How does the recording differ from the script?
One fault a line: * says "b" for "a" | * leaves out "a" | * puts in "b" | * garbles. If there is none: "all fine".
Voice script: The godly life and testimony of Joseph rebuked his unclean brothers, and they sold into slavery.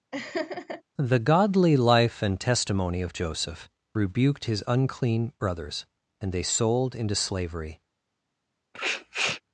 all fine